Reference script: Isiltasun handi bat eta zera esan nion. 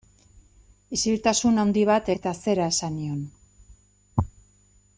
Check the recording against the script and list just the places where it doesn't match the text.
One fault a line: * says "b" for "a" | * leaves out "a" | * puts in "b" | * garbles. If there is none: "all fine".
all fine